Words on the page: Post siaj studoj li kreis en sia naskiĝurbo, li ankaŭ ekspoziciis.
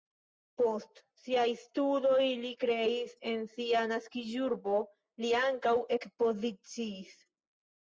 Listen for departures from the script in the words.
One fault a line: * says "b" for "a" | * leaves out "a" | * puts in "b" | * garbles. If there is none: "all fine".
all fine